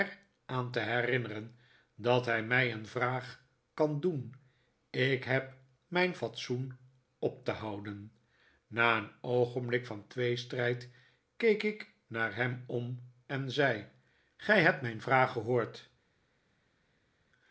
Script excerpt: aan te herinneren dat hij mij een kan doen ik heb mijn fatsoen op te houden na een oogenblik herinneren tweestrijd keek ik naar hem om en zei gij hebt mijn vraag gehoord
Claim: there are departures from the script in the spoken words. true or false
true